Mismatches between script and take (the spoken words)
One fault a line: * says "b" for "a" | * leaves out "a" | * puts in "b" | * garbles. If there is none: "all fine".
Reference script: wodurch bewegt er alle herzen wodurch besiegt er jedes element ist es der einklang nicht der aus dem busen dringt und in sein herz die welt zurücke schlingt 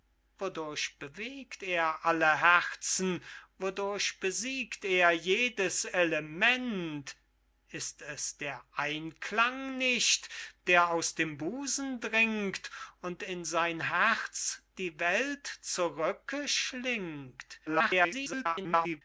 * garbles